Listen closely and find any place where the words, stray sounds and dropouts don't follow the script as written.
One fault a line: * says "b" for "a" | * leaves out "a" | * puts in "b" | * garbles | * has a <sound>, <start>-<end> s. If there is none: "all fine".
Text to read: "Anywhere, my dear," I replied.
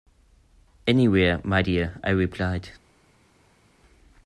all fine